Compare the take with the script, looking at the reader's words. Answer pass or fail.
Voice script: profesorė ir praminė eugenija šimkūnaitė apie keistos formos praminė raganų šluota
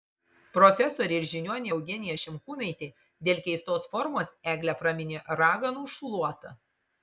fail